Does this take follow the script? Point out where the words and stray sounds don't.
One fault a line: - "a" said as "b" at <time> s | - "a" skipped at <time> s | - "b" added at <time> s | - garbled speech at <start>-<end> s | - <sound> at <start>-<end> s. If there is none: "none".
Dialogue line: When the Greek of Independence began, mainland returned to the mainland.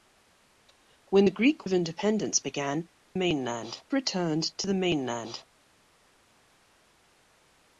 none